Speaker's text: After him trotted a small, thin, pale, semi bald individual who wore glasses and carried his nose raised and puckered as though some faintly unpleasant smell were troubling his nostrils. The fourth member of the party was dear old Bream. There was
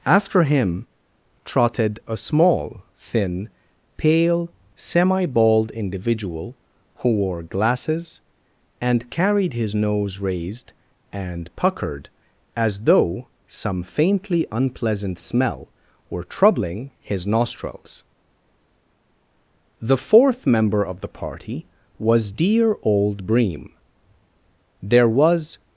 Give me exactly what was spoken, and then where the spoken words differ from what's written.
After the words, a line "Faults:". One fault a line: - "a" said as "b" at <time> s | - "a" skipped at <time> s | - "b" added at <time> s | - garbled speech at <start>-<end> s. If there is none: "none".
After him trotted a small, thin, pale, semi bald individual who wore glasses and carried his nose raised and puckered as though some faintly unpleasant smell were troubling his nostrils. The fourth member of the party was dear old Bream. There was
Faults:
none